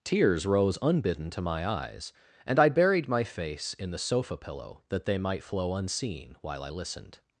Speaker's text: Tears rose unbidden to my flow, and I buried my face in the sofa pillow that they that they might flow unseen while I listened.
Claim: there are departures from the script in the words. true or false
true